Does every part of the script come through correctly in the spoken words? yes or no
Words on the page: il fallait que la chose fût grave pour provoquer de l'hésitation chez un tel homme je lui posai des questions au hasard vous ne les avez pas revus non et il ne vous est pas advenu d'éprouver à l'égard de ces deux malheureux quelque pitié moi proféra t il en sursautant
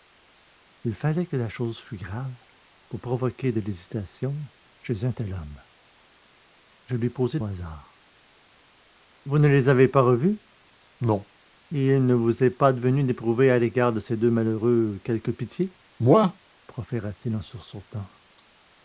no